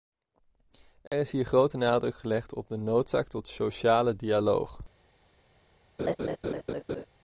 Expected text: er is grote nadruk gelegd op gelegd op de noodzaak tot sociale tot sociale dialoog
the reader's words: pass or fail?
fail